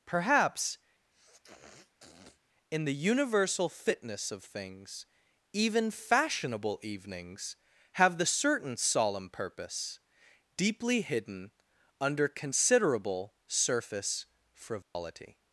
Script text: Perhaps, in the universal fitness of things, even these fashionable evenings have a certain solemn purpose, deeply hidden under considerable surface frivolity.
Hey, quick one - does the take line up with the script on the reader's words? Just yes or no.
no